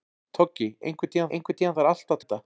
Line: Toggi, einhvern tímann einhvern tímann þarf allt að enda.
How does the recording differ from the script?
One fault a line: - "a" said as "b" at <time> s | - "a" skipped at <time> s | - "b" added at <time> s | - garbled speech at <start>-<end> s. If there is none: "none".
none